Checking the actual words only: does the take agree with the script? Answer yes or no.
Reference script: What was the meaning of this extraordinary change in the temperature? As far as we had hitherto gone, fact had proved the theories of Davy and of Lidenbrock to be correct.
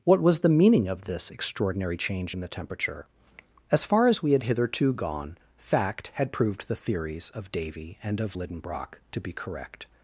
yes